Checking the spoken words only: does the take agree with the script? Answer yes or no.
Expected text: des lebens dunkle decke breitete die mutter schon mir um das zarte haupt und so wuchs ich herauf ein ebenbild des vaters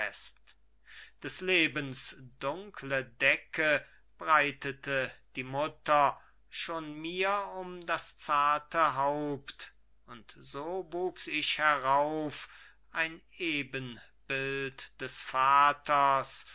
yes